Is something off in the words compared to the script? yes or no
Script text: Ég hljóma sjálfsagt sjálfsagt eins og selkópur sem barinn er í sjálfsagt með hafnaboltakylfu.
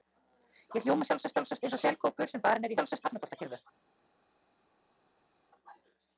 no